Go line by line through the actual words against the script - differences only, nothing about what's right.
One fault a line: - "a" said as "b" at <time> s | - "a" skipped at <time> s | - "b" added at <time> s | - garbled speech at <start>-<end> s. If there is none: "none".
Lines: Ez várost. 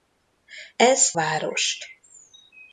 none